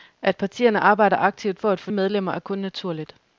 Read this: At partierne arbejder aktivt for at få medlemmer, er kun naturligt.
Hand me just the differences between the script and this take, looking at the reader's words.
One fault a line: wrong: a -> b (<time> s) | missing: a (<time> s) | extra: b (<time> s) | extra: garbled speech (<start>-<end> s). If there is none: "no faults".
no faults